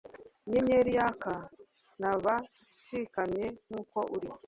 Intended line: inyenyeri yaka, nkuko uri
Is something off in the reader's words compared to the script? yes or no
yes